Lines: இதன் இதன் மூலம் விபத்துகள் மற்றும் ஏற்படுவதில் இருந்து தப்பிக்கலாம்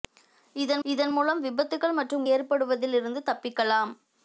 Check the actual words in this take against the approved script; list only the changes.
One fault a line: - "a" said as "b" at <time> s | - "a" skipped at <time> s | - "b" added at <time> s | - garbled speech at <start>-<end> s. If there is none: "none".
none